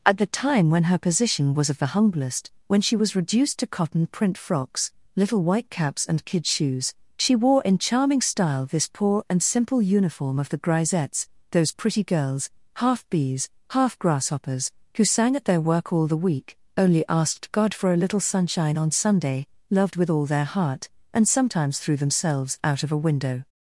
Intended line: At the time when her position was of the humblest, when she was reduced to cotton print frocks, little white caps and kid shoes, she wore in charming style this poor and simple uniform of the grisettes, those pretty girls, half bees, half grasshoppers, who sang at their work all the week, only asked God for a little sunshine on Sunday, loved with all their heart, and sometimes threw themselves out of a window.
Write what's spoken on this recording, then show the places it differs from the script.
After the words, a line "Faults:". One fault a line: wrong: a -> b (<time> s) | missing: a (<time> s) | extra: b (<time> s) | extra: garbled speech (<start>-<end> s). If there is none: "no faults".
At the time when her position was of the humblest, when she was reduced to cotton print frocks, little white caps and kid shoes, she wore in charming style this poor and simple uniform of the grisettes, those pretty girls, half bees, half grasshoppers, who sang at their work all the week, only asked God for a little sunshine on Sunday, loved with all their heart, and sometimes threw themselves out of a window.
Faults:
no faults